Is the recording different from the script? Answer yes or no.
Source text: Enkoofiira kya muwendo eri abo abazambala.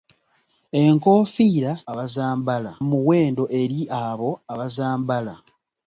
yes